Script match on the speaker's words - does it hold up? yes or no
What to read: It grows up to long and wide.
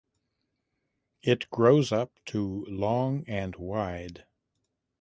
yes